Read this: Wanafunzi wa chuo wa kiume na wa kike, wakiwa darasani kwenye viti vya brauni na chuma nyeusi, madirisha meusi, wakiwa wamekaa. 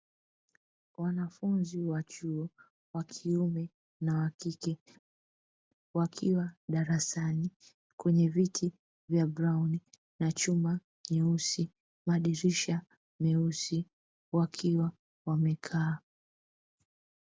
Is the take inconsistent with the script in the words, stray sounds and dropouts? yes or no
no